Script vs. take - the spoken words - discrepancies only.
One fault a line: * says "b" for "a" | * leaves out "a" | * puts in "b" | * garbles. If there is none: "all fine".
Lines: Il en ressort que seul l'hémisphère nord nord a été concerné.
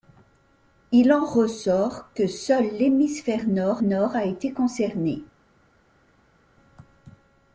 all fine